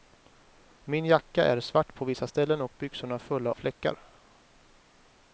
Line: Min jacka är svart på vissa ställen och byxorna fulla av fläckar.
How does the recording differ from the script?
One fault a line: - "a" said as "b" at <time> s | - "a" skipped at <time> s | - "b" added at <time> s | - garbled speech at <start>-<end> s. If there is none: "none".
- "av" skipped at 3.5 s